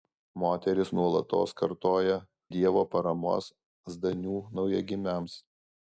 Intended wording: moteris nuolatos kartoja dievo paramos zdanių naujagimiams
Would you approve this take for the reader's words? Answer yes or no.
yes